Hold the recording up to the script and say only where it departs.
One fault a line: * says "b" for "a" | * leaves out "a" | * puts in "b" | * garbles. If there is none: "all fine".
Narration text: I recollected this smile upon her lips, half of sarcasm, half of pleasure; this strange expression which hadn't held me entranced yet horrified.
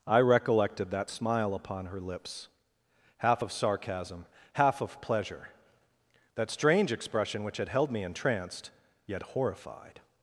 * says "that" for "this"
* says "that" for "this"
* says "had" for "hadn't"